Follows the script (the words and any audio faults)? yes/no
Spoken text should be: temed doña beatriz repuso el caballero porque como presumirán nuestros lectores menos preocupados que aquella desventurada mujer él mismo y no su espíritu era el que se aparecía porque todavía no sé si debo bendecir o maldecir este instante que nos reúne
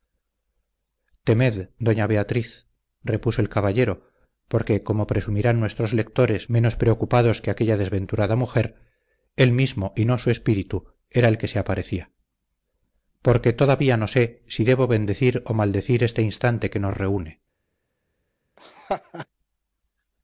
no